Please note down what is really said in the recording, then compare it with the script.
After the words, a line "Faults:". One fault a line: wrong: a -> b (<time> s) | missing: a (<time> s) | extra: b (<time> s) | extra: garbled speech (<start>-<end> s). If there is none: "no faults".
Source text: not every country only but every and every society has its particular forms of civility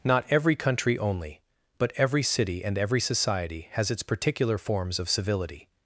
not every country only but every city and every society has its particular forms of civility
Faults:
extra: city (2.2 s)